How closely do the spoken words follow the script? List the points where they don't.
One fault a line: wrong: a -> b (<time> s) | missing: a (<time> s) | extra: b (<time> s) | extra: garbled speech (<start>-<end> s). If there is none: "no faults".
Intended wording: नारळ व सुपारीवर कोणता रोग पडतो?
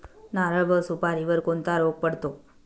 no faults